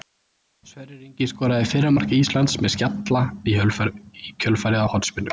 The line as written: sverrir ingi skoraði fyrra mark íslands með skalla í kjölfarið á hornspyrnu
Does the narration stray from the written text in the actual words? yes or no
no